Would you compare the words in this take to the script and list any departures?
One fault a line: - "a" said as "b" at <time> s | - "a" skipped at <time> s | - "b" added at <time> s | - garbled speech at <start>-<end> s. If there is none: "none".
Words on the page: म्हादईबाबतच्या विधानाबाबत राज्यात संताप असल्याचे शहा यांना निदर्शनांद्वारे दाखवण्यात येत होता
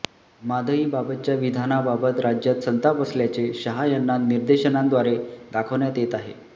- "होता" said as "आहे" at 6.1 s